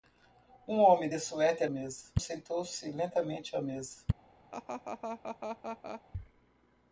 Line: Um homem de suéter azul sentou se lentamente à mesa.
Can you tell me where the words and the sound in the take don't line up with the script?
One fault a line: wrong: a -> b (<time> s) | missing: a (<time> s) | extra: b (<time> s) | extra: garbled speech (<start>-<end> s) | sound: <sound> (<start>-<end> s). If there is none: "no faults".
wrong: azul -> mesa (1.7 s)
sound: laugh (4.5-6.0 s)